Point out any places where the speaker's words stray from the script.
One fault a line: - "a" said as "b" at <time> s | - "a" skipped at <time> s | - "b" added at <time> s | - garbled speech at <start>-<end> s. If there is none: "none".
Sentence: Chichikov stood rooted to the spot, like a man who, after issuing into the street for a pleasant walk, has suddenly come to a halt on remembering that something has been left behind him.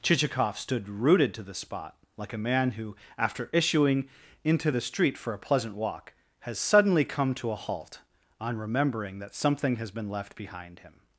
none